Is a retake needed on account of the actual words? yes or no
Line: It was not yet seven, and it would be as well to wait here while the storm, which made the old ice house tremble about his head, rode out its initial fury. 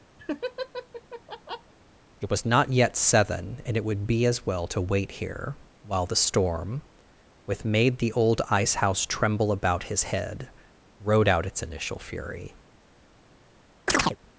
yes